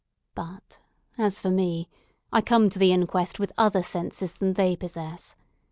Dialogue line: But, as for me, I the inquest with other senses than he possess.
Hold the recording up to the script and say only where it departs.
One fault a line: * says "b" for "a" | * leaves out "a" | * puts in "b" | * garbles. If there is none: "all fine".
* puts in "come to"
* says "they" for "he"